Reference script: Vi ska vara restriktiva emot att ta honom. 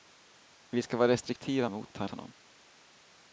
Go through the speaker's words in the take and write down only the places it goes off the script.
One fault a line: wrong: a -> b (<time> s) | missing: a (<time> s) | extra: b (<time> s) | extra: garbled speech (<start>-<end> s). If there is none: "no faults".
no faults